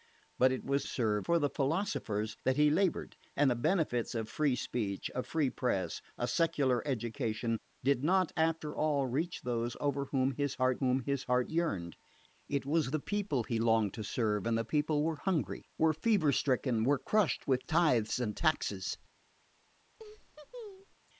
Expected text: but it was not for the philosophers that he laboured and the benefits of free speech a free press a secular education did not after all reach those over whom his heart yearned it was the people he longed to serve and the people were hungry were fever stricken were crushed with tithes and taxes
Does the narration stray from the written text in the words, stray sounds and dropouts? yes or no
yes